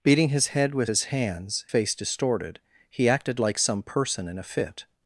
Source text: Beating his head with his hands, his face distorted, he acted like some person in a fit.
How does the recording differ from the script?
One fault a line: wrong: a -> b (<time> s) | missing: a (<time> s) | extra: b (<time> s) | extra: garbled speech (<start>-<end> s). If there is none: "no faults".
missing: his (1.7 s)